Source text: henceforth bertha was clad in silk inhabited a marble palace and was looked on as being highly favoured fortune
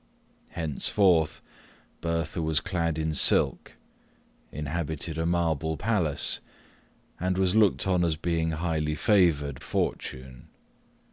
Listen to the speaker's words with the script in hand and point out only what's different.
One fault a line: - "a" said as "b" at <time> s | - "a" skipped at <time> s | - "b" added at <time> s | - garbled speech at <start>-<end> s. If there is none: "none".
none